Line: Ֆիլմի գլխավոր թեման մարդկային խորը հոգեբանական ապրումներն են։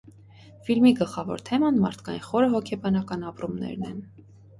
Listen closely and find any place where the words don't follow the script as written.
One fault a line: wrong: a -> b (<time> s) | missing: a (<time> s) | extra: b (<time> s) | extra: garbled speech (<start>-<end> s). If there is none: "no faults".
no faults